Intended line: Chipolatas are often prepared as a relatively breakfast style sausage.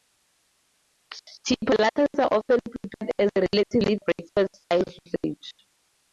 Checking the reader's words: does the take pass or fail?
pass